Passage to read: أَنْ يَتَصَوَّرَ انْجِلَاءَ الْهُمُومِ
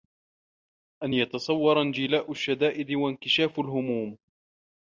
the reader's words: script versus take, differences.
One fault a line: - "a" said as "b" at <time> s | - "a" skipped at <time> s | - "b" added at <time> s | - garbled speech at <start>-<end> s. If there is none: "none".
- "الشَّدَائِدِ وَانْكِشَافَ" added at 2.3 s